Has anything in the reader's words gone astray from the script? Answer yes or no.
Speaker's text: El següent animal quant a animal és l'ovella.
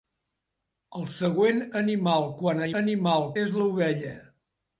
no